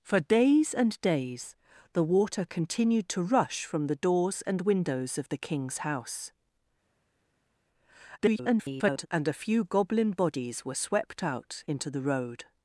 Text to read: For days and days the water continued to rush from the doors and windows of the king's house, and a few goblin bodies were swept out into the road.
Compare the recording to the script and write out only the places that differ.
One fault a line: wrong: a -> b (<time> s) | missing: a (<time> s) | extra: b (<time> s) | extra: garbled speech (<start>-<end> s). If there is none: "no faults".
extra: garbled speech (8.2-9.1 s)